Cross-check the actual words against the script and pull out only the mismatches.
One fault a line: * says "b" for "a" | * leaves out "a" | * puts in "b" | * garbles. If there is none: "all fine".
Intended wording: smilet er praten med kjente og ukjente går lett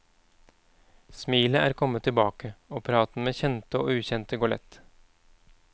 * puts in "kommet tilbake og"